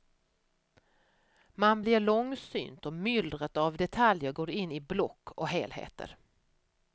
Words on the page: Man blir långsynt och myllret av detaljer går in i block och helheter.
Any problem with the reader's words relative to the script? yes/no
no